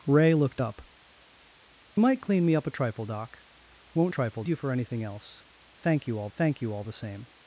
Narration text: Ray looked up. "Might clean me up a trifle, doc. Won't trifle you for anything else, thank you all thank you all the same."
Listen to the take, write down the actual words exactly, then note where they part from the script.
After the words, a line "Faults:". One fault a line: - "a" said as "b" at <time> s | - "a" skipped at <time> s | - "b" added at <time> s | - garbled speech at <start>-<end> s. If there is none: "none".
Ray looked up. "Might clean me up a trifle, doc. Won't trifle you for anything else, thank you all thank you all the same."
Faults:
none